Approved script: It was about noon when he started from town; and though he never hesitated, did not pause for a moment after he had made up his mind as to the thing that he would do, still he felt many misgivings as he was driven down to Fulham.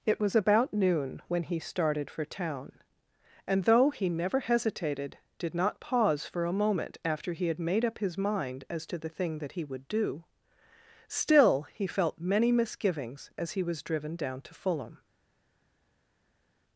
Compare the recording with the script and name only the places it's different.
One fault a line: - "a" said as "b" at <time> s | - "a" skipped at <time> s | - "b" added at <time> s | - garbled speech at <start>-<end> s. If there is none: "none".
- "from" said as "for" at 2.1 s